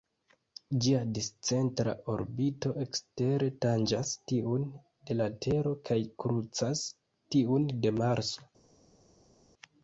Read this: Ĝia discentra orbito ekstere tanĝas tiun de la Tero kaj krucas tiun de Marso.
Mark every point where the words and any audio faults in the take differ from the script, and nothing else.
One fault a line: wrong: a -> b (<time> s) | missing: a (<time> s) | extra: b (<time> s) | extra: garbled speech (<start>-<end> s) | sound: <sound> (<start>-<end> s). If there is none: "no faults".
no faults